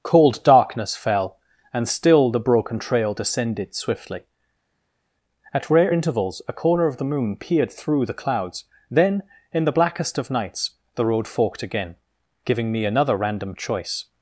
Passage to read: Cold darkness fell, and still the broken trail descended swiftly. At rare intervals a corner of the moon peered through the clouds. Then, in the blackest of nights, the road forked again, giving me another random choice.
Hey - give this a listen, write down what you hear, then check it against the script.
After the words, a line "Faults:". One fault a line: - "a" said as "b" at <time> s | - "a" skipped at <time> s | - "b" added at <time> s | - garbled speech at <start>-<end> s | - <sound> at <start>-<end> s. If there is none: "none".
Cold darkness fell, and still the broken trail descended swiftly. At rare intervals a corner of the moon peered through the clouds. Then, in the blackest of nights, the road forked again, giving me another random choice.
Faults:
none